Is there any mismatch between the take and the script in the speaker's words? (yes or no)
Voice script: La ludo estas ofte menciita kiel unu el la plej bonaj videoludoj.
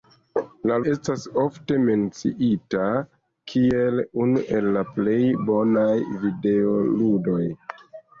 yes